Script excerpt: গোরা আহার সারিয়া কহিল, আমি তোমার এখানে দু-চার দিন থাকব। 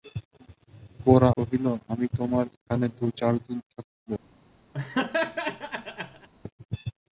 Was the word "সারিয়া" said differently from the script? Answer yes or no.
yes